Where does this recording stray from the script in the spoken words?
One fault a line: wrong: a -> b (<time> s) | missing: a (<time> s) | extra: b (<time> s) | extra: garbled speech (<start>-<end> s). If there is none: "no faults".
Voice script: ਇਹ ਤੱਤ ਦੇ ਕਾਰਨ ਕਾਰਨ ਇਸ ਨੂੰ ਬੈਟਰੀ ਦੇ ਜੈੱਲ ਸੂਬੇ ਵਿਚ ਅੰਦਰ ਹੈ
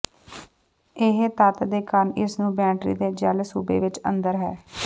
missing: ਕਾਰਨ (2.1 s)